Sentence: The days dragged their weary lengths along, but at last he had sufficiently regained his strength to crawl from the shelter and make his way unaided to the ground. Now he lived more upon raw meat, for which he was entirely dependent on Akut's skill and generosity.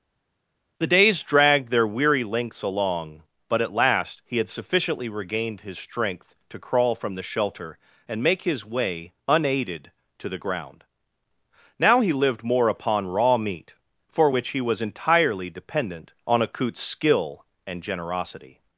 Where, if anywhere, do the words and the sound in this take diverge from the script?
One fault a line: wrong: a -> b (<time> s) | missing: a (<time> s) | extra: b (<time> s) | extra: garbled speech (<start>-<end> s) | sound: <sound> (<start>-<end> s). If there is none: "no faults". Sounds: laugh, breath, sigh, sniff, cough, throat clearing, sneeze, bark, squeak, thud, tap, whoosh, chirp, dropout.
no faults